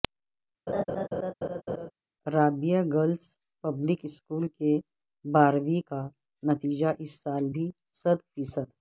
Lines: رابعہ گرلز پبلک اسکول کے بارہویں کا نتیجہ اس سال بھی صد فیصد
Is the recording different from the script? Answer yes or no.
no